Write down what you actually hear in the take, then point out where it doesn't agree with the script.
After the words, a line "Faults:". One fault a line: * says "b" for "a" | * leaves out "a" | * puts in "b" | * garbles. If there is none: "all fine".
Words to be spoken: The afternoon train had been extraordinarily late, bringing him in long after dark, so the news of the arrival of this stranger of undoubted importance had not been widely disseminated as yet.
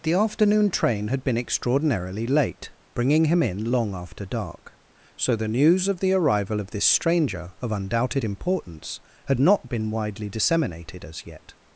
The afternoon train had been extraordinarily late, bringing him in long after dark, so the news of the arrival of this stranger of undoubted importance had not been widely disseminated as yet.
Faults:
all fine